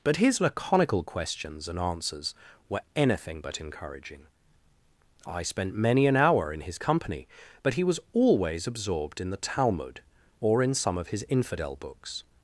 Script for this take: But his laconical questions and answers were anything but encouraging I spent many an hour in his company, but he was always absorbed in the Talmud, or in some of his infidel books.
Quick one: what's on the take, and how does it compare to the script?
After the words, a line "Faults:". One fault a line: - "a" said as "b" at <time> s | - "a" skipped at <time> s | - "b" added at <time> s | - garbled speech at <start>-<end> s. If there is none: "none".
But his laconical questions and answers were anything but encouraging I spent many an hour in his company, but he was always absorbed in the Talmud, or in some of his infidel books.
Faults:
none